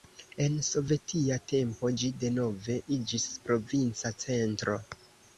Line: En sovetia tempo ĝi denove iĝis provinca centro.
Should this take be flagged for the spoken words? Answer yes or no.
no